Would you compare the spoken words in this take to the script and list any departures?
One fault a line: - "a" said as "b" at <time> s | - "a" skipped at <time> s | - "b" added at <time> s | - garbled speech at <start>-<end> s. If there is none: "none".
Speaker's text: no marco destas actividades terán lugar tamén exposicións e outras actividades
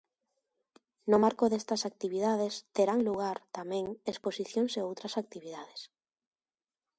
none